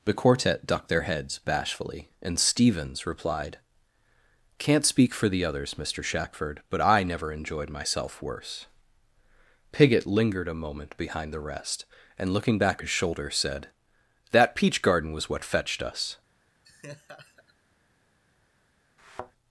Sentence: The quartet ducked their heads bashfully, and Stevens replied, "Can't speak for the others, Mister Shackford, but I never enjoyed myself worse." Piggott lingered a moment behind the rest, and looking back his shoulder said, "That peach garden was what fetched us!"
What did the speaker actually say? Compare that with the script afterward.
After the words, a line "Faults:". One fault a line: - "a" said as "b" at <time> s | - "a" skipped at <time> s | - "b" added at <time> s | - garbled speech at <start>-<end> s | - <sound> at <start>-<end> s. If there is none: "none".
The quartet ducked their heads bashfully, and Stevens replied, "Can't speak for the others, Mister Shackford, but I never enjoyed myself worse." Piggott lingered a moment behind the rest, and looking back his shoulder said, "That peach garden was what fetched us!"
Faults:
- laugh at 16.6-17.5 s
- thud at 19.0-19.3 s